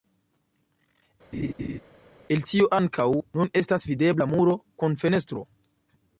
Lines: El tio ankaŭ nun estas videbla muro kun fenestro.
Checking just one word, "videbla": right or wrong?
right